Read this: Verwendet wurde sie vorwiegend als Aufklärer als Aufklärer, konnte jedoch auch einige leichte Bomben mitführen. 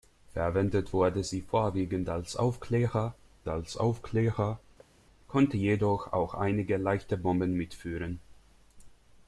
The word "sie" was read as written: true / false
true